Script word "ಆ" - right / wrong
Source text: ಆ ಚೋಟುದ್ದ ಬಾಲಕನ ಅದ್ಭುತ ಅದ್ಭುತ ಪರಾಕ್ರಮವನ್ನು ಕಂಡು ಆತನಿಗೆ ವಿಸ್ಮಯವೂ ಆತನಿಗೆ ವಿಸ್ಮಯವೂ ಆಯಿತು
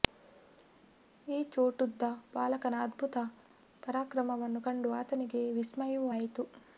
wrong